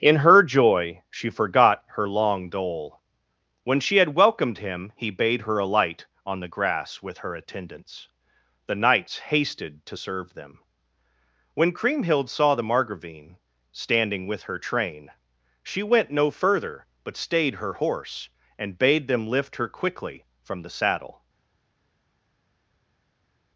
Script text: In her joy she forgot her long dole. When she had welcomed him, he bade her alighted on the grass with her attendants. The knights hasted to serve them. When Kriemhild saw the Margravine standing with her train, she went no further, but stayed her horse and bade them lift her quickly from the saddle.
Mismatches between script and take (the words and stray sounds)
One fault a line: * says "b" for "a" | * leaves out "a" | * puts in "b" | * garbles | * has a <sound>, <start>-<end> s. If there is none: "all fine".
* says "alight" for "alighted"